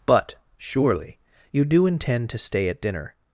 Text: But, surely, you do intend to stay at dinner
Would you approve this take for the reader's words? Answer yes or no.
yes